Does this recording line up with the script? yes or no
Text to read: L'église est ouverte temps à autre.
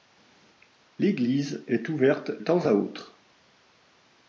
yes